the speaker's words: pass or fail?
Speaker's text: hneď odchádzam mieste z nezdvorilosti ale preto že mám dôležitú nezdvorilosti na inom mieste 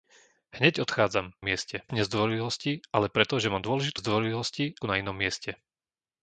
pass